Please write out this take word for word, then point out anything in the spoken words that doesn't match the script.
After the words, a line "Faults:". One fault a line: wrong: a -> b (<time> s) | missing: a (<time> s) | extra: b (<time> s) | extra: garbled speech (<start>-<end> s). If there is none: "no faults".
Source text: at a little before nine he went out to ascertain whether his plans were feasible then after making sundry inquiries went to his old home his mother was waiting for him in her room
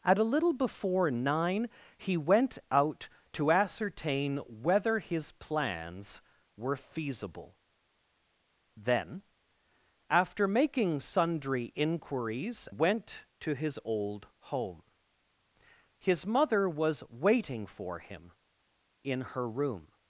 at a little before nine he went out to ascertain whether his plans were feasible then after making sundry inquiries went to his old home his mother was waiting for him in her room
Faults:
no faults